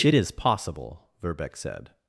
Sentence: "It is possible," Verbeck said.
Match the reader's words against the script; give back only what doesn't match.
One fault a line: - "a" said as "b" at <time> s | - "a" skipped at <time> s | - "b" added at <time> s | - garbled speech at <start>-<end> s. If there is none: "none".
none